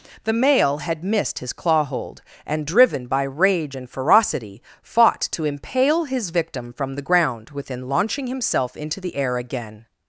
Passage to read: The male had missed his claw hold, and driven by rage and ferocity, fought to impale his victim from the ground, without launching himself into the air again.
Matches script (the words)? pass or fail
fail